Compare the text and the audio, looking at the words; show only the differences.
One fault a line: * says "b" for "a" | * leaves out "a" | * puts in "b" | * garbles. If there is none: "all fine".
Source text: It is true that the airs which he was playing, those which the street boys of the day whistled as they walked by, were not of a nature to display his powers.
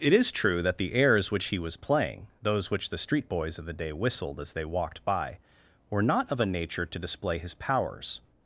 all fine